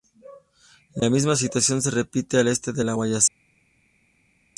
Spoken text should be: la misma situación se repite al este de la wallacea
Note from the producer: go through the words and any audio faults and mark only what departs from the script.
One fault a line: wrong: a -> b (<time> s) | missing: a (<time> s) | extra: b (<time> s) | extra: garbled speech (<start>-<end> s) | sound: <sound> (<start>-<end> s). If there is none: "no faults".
no faults